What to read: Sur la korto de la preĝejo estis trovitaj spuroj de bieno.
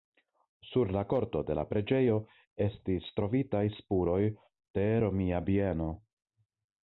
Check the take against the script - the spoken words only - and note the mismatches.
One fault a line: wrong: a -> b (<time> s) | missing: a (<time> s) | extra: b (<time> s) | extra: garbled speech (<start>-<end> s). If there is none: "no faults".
extra: romia (5.1 s)